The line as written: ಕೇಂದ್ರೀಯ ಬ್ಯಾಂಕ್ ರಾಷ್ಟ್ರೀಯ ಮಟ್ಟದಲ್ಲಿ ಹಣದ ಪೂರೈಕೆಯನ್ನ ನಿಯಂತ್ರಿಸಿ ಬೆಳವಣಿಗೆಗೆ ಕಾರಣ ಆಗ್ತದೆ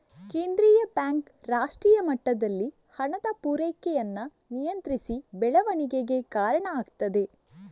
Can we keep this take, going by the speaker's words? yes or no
yes